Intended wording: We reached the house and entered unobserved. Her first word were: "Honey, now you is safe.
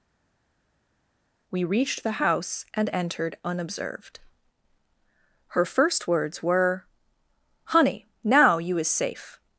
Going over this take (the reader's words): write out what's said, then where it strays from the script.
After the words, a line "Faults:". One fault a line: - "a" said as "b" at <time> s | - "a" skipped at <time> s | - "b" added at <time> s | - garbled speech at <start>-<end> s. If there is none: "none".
We reached the house and entered unobserved. Her first words were: "Honey, now you is safe.
Faults:
- "word" said as "words" at 6.1 s